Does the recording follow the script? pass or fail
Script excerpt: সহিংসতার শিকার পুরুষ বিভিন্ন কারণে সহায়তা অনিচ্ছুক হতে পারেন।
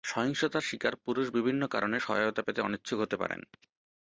fail